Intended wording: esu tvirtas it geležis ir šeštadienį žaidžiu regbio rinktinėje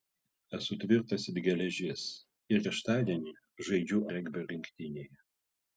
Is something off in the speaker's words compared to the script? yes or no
no